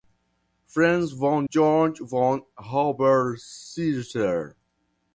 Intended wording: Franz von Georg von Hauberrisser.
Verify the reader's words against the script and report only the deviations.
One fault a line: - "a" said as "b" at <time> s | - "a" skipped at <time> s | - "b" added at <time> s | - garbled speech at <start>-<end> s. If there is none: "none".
none